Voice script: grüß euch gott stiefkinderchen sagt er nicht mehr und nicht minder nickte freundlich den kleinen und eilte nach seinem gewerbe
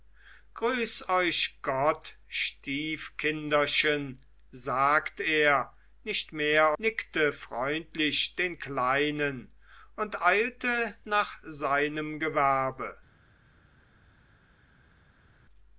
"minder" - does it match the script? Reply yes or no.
no